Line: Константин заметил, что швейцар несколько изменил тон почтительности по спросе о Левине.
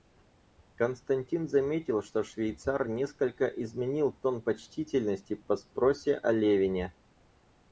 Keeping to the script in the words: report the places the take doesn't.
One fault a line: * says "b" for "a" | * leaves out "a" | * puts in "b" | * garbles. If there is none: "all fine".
all fine